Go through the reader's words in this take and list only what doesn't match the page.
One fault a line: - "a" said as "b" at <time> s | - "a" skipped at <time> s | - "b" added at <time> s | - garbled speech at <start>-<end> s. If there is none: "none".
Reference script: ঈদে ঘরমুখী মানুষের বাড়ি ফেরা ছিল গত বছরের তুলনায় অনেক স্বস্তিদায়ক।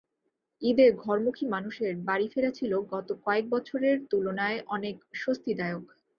- "কয়েক" added at 3.3 s